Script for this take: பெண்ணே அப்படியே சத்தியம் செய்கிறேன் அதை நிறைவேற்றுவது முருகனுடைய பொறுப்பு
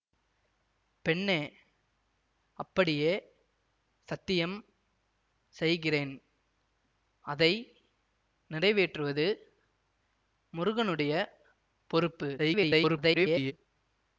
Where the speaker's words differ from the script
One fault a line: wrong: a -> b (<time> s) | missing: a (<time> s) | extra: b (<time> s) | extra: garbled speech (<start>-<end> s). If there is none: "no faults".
extra: garbled speech (12.4-13.5 s)